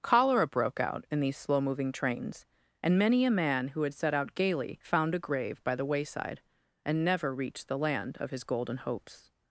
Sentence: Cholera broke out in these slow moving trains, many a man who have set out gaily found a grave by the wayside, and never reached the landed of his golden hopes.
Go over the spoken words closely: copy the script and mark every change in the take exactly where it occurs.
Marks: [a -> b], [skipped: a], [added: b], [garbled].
Cholera broke out in these slow moving trains, [added: and] many a man who [have -> had] set out gaily found a grave by the wayside, and never reached the [landed -> land] of his golden hopes.